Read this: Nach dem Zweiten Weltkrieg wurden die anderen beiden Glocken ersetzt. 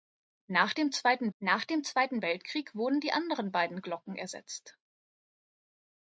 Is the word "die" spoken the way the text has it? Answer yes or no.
yes